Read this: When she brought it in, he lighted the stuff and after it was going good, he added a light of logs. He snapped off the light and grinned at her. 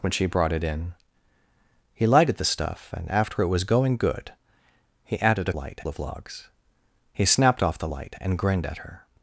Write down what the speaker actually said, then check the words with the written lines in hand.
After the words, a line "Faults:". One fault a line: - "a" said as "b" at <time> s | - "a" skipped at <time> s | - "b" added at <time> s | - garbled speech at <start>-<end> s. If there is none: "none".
When she brought it in, he lighted the stuff and after it was going good, he added a light of logs. He snapped off the light and grinned at her.
Faults:
none